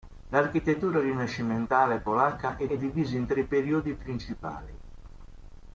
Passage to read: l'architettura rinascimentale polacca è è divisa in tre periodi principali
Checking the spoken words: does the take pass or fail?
pass